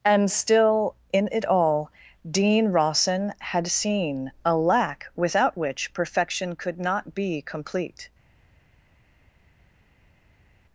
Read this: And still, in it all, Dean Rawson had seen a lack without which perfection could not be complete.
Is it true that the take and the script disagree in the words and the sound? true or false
false